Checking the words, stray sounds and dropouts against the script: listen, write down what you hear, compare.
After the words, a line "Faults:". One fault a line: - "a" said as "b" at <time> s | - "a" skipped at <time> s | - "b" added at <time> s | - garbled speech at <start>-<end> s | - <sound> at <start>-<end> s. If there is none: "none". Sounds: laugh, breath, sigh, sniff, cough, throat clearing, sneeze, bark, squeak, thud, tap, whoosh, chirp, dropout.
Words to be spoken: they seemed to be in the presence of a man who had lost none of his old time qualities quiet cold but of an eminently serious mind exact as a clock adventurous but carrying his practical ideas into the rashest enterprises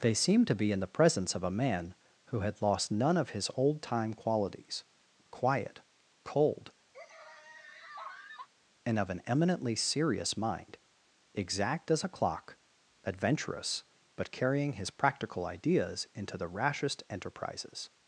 they seemed to be in the presence of a man who had lost none of his old time qualities quiet cold and of an eminently serious mind exact as a clock adventurous but carrying his practical ideas into the rashest enterprises
Faults:
- laugh at 6.9-8.5 s
- "but" said as "and" at 8.8 s